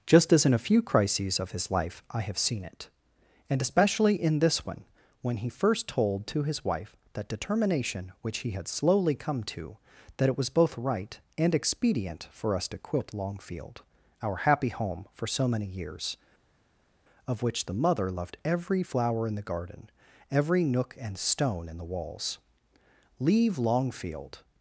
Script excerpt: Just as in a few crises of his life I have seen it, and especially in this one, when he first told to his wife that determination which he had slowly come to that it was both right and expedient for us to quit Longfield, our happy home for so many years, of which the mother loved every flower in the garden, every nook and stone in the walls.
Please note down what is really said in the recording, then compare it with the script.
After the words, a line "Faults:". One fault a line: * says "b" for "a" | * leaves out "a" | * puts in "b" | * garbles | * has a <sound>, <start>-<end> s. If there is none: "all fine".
Just as in a few crises of his life I have seen it, and especially in this one, when he first told to his wife that determination which he had slowly come to that it was both right and expedient for us to quit Longfield, our happy home for so many years, of which the mother loved every flower in the garden, every nook and stone in the walls. "Leave Longfield
Faults:
* puts in "Leave Longfield"